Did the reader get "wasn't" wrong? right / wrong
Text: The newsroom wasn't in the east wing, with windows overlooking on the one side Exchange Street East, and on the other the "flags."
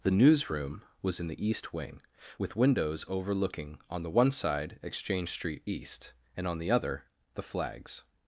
wrong